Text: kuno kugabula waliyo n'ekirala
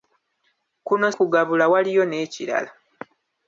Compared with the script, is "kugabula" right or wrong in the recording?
right